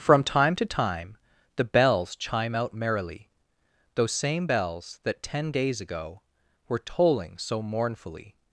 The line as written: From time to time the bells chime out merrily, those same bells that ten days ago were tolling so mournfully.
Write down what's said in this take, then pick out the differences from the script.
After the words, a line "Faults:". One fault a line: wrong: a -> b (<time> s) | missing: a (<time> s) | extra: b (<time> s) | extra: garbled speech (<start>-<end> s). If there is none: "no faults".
From time to time the bells chime out merrily, those same bells that ten days ago were tolling so mournfully.
Faults:
no faults